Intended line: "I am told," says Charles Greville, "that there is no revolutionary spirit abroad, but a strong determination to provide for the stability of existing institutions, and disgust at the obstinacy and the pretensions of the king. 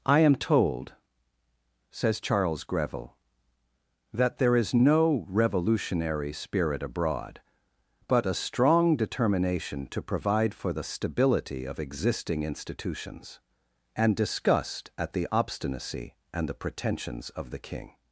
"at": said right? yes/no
yes